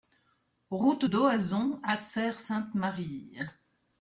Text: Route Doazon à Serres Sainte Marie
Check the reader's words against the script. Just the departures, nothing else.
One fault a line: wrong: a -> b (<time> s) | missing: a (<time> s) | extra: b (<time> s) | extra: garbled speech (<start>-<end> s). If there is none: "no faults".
no faults